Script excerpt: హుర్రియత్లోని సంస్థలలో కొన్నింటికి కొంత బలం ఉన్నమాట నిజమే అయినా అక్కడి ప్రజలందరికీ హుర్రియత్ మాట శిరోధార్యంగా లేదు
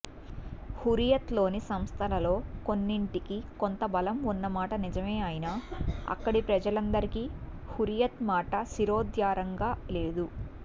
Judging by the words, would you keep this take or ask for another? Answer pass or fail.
pass